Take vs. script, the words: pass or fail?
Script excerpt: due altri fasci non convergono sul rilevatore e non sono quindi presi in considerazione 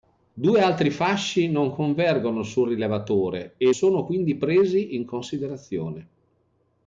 fail